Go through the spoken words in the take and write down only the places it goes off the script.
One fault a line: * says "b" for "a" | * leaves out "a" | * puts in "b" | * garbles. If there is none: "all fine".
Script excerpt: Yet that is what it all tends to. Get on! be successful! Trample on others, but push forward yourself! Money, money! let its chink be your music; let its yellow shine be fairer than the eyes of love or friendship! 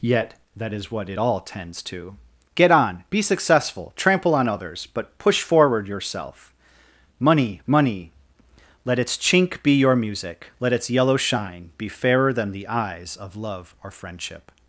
all fine